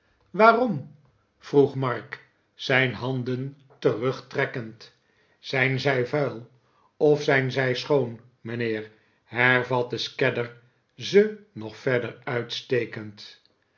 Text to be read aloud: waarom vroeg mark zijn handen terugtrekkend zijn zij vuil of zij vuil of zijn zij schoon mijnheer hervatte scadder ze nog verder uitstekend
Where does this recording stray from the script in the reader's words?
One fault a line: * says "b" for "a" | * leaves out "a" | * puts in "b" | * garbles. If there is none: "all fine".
* leaves out "zij vuil of"